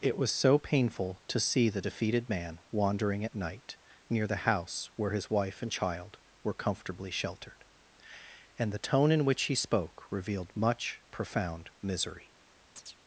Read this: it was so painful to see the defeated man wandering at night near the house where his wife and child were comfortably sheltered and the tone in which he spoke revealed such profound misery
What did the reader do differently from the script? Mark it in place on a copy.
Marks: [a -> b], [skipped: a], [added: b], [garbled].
it was so painful to see the defeated man wandering at night near the house where his wife and child were comfortably sheltered and the tone in which he spoke revealed [such -> much] profound misery